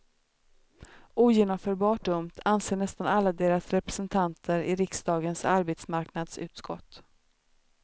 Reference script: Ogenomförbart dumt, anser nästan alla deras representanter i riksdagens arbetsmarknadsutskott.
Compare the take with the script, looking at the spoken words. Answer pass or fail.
pass